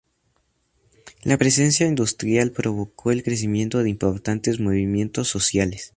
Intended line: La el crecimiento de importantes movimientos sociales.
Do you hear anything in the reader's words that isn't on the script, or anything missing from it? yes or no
yes